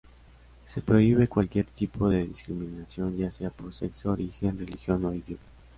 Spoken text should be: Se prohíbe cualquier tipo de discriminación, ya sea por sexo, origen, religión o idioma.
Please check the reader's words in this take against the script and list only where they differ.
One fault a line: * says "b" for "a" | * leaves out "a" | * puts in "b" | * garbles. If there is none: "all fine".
all fine